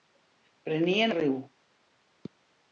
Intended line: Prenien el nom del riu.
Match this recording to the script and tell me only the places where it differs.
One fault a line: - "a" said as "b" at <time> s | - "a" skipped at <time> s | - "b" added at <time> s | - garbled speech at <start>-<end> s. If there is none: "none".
- "el nom del" skipped at 1.1 s